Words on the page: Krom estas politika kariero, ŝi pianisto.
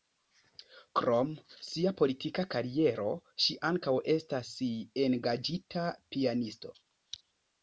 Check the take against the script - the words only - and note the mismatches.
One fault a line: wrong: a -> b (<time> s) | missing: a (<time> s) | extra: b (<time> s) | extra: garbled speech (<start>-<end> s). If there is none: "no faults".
wrong: estas -> sia (1.7 s)
extra: ankaŭ estas engaĝita (3.7 s)